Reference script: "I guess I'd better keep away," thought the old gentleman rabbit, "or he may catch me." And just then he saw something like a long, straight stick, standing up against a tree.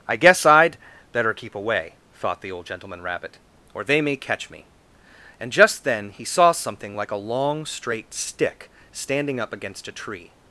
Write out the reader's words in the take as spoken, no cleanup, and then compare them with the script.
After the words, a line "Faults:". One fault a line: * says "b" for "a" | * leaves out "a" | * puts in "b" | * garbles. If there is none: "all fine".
"I guess I'd better keep away," thought the old gentleman rabbit, "or they may catch me." And just then he saw something like a long, straight stick, standing up against a tree.
Faults:
* says "they" for "he"